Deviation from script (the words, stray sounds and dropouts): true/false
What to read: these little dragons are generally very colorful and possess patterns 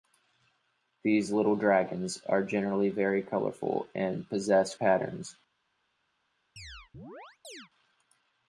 true